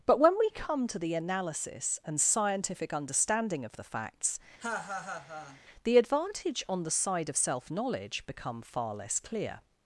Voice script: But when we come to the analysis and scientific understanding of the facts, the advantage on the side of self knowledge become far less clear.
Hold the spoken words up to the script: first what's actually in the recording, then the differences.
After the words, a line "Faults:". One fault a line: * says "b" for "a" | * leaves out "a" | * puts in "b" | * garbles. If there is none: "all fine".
But when we come to the analysis and scientific understanding of the facts, the advantage on the side of self knowledge become far less clear.
Faults:
all fine